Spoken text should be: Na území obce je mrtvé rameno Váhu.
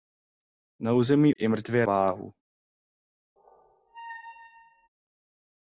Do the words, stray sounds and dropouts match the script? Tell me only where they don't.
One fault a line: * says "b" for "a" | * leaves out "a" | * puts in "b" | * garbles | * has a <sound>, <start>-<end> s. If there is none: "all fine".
* leaves out "obce"
* leaves out "rameno"
* has a squeak, 3.4-4.9 s